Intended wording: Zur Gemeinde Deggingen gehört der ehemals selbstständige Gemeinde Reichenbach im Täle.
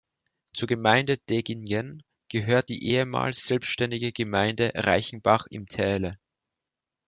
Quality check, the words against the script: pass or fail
fail